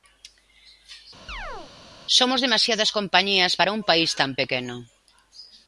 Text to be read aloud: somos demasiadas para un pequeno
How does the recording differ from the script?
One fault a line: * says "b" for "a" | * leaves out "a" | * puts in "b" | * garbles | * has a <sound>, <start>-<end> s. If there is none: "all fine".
* has a chirp, 1.3-1.7 s
* puts in "compañías"
* puts in "país tan"